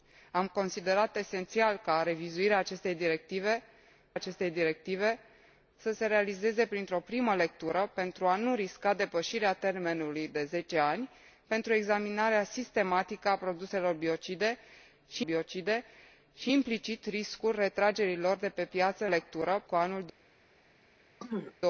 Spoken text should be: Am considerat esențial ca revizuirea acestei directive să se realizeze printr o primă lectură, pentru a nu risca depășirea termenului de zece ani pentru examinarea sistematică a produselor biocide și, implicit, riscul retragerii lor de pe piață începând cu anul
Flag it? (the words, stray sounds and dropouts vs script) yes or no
yes